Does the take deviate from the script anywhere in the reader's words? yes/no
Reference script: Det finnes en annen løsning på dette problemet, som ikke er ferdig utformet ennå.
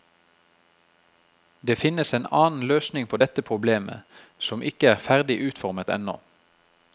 no